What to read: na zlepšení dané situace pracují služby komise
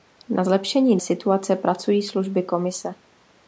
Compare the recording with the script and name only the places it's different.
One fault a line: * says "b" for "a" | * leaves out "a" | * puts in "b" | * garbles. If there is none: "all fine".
* leaves out "dané"